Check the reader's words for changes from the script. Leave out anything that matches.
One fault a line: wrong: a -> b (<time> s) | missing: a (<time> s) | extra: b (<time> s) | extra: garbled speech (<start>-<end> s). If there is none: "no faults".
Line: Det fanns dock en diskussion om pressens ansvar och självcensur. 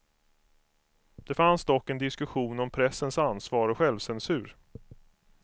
no faults